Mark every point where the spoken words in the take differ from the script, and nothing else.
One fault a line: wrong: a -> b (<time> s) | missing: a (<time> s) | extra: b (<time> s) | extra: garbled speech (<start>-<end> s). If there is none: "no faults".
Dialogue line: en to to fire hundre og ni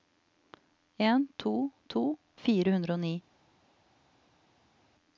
no faults